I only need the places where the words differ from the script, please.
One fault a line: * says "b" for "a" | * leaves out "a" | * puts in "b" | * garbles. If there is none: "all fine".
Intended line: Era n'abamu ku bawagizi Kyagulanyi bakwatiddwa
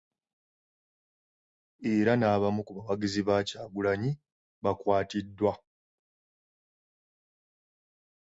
* puts in "ba"